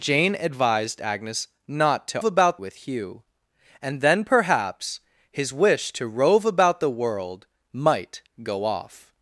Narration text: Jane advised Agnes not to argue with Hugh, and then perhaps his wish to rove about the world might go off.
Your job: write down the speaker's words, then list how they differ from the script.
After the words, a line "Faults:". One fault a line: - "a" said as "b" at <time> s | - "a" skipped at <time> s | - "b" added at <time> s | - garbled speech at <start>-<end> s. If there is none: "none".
Jane advised Agnes not to about with Hugh, and then perhaps his wish to rove about the world might go off.
Faults:
- "argue" said as "about" at 2.2 s